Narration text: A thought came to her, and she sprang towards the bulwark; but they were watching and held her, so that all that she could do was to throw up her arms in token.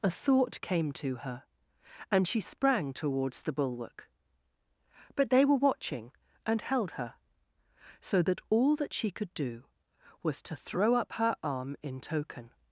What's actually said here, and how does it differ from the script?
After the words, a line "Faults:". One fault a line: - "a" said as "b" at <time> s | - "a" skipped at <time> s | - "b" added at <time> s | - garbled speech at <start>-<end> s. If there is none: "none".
A thought came to her, and she sprang towards the bulwark; but they were watching and held her, so that all that she could do was to throw up her arm in token.
Faults:
- "arms" said as "arm" at 11.4 s